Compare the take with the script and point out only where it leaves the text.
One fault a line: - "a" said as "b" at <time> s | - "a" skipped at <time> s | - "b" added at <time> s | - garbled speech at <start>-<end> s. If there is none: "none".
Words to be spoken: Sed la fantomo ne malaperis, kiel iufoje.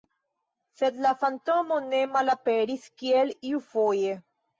none